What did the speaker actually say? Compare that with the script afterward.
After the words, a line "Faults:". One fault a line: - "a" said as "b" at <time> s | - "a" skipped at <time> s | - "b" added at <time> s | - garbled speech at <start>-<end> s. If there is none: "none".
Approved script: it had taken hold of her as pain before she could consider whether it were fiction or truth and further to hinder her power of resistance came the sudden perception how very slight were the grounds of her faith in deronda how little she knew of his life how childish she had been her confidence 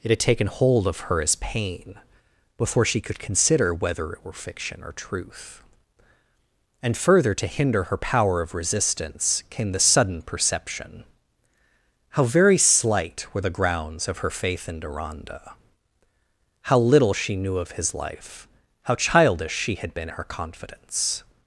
it had taken hold of her as pain before she could consider whether it were fiction or truth and further to hinder her power of resistance came the sudden perception how very slight were the grounds of her faith in deronda how little she knew of his life how childish she had been her confidence
Faults:
none